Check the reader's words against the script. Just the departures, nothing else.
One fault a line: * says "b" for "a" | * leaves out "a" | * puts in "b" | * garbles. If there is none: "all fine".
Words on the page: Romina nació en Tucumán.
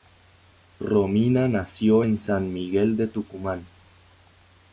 * puts in "San Miguel de"